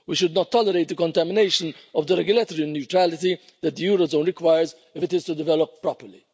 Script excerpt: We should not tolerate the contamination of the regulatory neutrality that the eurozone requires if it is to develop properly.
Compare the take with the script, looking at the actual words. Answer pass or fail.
pass